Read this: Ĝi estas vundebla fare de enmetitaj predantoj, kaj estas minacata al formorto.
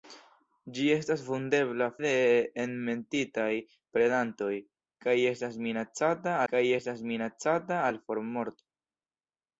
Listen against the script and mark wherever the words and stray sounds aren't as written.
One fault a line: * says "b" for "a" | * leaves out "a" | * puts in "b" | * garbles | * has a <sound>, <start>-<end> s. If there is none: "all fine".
* leaves out "fare"
* puts in "kaj estas minacata"